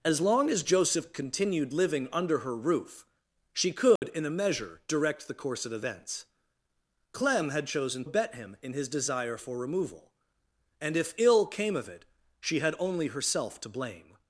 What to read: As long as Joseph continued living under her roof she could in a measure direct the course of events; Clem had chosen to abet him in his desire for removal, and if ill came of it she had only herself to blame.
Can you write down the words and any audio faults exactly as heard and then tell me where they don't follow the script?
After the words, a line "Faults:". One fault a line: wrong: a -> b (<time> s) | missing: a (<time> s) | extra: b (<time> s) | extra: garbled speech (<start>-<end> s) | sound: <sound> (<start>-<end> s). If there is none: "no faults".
As long as Joseph continued living under her roof she could in a measure direct the course of events; Clem had chosen abet him in his desire for removal, and if ill came of it she had only herself to blame.
Faults:
sound: dropout (4.0-4.0 s)
missing: to (8.0 s)